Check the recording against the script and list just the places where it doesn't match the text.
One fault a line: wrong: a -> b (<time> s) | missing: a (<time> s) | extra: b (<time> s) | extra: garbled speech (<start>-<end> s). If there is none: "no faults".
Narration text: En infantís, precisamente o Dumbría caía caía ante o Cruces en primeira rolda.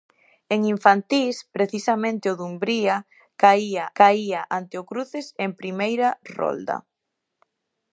no faults